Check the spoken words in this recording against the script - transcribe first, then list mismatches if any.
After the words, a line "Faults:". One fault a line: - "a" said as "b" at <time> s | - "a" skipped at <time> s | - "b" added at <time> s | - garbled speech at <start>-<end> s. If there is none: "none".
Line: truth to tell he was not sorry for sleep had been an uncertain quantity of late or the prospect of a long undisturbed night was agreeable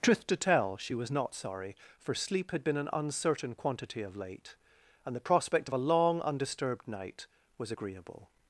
truth to tell she was not sorry for sleep had been an uncertain quantity of late and the prospect of a long undisturbed night was agreeable
Faults:
- "he" said as "she" at 0.8 s
- "or" said as "and" at 5.0 s